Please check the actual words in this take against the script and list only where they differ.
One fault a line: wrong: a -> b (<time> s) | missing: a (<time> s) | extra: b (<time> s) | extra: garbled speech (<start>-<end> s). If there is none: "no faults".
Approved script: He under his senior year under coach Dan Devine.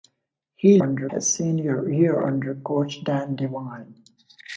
no faults